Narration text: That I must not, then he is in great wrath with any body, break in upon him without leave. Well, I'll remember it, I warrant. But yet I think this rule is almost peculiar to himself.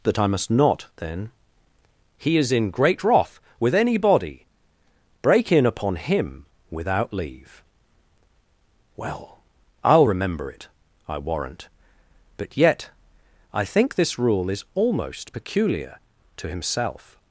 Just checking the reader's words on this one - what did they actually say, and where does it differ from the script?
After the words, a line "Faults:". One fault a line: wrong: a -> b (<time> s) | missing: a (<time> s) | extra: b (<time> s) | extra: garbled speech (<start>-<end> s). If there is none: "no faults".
That I must not, then he is in great wrath with any body, break in upon him without leave. Well, I'll remember it, I warrant. But yet I think this rule is almost peculiar to himself.
Faults:
no faults